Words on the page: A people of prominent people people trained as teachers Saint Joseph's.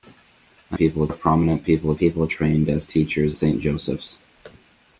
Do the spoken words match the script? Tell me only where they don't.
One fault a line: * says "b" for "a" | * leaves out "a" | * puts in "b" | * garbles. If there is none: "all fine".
all fine